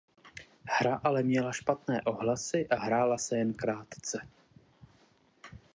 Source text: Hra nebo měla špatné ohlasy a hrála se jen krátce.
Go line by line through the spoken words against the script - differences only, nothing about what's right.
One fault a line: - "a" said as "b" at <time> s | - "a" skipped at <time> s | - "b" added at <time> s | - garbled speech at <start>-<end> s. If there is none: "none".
- "nebo" said as "ale" at 1.0 s